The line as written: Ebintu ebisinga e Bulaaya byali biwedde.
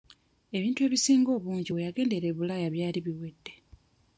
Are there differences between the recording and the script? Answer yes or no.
yes